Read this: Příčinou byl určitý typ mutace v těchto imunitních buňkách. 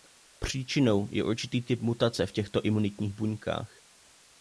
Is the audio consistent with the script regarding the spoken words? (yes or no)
no